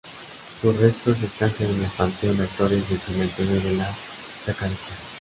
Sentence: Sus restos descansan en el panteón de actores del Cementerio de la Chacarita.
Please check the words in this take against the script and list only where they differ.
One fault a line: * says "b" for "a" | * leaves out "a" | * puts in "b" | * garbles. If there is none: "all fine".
all fine